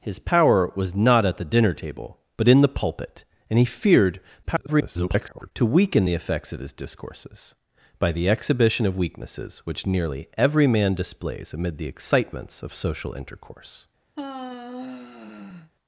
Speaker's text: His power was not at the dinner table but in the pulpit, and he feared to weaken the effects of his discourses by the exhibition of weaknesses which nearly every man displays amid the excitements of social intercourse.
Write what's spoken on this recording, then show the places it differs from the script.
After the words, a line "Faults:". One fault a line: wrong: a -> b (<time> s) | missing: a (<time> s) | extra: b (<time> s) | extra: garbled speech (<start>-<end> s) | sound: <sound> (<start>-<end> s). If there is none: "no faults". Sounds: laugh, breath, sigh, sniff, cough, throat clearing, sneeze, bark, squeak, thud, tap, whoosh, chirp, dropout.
His power was not at the dinner table but in the pulpit, and he feared [garbled] to weaken the effects of his discourses by the exhibition of weaknesses which nearly every man displays amid the excitements of social intercourse.
Faults:
extra: garbled speech (4.4-5.5 s)
sound: sigh (14.2-15.7 s)